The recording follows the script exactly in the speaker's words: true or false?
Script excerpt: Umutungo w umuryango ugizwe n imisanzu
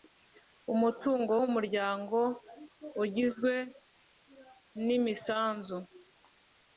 true